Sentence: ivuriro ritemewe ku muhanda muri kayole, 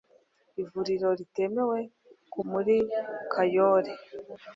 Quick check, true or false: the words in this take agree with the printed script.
false